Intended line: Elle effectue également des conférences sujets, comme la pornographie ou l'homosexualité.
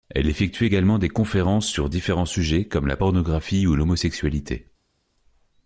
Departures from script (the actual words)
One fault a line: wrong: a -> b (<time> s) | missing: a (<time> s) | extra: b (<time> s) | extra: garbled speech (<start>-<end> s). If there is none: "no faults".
extra: sur différents (1.7 s)